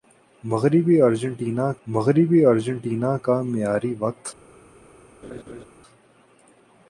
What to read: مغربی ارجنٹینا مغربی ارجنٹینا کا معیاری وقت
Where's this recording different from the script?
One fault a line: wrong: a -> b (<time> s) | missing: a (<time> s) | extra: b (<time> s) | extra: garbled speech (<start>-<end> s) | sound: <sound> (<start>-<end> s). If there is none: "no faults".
sound: laugh (5.2-5.7 s)